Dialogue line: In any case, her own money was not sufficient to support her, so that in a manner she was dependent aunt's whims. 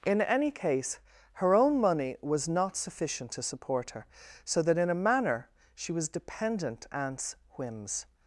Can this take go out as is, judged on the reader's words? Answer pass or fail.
pass